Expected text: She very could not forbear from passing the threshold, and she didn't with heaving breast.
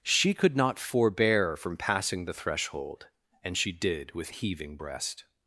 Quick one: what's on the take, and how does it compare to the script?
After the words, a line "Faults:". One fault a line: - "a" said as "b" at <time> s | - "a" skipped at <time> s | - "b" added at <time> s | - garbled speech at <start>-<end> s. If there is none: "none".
She could not forbear from passing the threshold, and she did with heaving breast.
Faults:
- "very" skipped at 0.3 s
- "didn't" said as "did" at 3.7 s